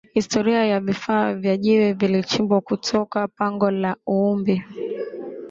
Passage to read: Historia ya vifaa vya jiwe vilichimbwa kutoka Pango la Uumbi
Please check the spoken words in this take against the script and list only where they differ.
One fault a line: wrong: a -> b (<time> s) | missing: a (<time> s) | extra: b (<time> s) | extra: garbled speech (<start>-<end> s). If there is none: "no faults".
no faults